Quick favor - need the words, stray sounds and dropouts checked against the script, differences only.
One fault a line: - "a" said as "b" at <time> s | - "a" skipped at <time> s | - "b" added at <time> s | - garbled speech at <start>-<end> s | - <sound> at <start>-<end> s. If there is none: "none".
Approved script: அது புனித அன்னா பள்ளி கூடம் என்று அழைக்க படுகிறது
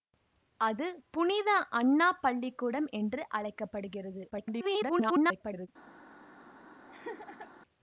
- garbled speech at 4.3-5.7 s
- laugh at 6.9-7.5 s